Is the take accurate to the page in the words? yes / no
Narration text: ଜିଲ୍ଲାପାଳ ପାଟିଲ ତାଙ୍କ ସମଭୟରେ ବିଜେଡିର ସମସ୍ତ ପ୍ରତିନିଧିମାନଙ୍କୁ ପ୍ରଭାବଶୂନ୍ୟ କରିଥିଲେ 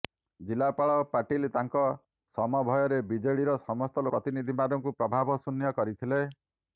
yes